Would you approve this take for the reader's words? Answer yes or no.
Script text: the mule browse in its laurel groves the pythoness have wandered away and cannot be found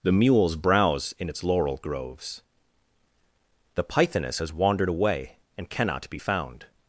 no